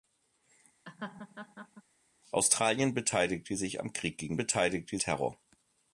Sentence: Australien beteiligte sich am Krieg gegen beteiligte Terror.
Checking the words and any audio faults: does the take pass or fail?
fail